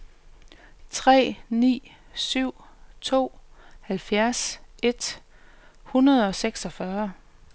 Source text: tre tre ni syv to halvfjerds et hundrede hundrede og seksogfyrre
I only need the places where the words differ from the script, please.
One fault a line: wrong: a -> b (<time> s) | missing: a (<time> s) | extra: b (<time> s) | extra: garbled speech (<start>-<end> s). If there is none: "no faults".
missing: tre (1.4 s)
missing: hundrede (6.3 s)